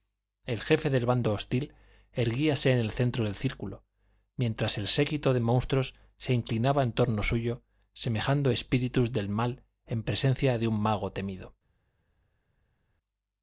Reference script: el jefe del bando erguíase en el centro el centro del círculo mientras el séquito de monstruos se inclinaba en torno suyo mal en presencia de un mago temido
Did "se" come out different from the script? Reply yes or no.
no